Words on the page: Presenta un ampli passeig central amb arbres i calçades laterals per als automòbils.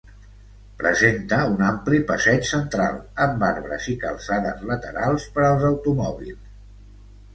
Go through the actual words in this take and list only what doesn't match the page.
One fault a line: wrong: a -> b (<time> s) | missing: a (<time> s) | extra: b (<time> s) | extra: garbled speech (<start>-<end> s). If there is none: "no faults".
no faults